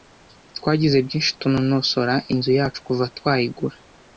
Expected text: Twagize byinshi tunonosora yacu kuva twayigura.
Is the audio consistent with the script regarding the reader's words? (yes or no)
no